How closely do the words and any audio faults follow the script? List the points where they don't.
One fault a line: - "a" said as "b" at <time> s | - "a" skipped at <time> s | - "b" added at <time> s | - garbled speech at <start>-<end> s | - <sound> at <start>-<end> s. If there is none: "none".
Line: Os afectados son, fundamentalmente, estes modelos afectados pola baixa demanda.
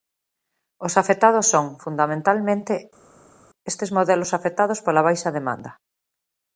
none